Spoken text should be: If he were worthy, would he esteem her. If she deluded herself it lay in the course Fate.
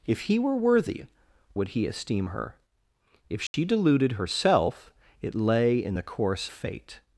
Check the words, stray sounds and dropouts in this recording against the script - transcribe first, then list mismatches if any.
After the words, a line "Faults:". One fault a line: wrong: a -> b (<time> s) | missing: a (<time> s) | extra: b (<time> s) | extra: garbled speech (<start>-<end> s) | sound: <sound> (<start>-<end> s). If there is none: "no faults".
If he were worthy, would he esteem her. If she deluded herself it lay in the course Fate.
Faults:
sound: dropout (3.5-3.5 s)